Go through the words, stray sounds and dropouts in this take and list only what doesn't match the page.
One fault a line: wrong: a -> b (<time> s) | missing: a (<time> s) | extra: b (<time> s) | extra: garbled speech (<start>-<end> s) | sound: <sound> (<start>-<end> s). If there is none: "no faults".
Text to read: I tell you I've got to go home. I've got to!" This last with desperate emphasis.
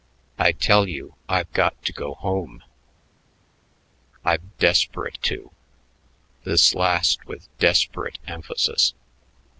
wrong: got -> desperate (4.6 s)